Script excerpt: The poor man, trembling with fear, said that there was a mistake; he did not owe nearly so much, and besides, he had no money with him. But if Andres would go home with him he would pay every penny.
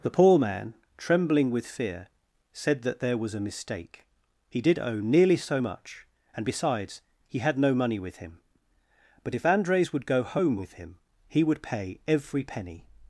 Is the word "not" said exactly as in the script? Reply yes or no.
no